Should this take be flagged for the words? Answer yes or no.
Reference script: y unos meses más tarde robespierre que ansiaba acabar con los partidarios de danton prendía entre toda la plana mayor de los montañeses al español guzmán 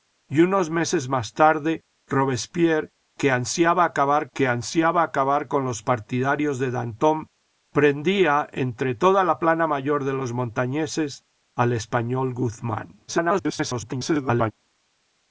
yes